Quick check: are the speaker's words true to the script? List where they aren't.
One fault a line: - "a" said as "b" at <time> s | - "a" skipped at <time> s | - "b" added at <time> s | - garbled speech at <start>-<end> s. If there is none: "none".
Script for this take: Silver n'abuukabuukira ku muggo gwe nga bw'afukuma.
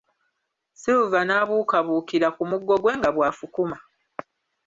none